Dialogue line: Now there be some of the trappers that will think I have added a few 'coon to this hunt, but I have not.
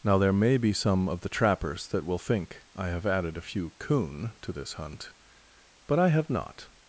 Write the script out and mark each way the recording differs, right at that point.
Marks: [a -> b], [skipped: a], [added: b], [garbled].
Now there [added: may] be some of the trappers that will think I have added a few 'coon to this hunt, but I have not.